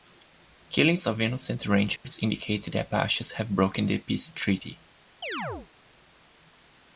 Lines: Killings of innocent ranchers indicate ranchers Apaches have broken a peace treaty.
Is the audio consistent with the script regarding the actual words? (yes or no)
no